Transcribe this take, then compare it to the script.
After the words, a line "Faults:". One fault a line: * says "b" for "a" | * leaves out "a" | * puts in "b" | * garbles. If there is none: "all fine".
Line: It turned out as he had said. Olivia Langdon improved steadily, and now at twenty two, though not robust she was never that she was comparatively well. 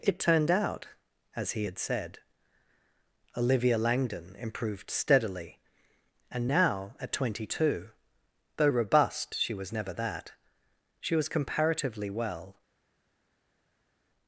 It turned out as he had said. Olivia Langdon improved steadily, and now at twenty two, though robust she was never that she was comparatively well.
Faults:
* leaves out "not"